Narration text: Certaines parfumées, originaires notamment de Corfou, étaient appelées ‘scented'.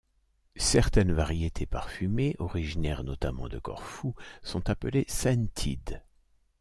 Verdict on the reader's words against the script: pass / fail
fail